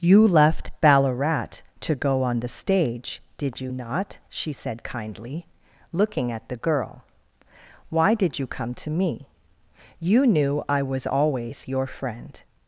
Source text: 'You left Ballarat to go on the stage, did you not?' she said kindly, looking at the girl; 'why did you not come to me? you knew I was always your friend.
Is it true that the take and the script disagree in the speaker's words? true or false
true